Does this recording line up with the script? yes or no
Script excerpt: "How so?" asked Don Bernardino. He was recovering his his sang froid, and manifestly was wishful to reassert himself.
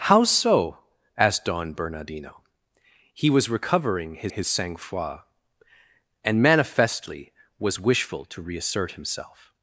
yes